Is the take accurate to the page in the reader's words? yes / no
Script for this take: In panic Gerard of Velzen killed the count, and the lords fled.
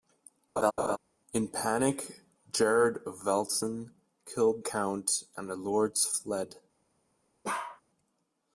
no